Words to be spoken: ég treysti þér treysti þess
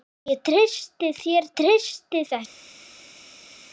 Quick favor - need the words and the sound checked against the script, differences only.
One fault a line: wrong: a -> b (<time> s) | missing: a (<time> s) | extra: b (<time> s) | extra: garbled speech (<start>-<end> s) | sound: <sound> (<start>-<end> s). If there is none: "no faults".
no faults